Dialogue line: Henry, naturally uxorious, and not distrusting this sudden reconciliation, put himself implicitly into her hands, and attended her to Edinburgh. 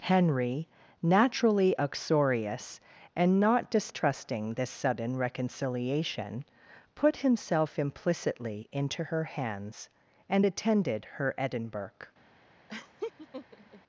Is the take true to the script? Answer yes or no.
no